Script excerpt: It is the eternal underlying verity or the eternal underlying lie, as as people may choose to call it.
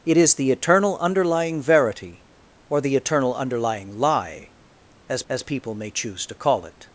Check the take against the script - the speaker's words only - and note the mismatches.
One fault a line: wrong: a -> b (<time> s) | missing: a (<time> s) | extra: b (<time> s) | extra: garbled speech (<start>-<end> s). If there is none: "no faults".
no faults